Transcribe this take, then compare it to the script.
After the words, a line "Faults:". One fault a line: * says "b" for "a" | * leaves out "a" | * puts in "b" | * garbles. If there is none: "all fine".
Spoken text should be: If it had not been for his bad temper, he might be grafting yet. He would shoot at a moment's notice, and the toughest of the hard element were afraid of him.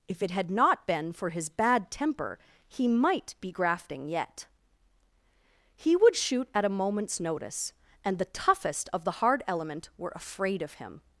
If it had not been for his bad temper, he might be grafting yet. He would shoot at a moment's notice, and the toughest of the hard element were afraid of him.
Faults:
all fine